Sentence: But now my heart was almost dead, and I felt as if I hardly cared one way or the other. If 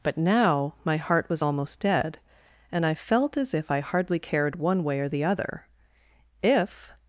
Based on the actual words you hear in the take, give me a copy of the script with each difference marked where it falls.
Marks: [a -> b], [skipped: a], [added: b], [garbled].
But now my heart was almost dead, and I felt as if I hardly cared one way or the other. If